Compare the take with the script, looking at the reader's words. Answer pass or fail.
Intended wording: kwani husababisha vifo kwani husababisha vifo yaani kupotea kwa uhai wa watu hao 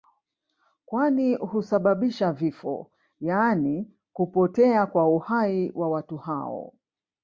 fail